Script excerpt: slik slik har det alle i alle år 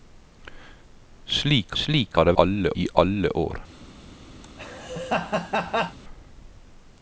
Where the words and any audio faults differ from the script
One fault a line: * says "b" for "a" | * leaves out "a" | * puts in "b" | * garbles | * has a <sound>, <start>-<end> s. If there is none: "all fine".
* has a laugh, 4.4-6.0 s